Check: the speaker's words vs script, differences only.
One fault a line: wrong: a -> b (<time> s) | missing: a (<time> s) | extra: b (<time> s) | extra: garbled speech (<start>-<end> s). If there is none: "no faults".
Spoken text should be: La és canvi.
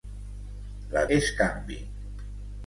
no faults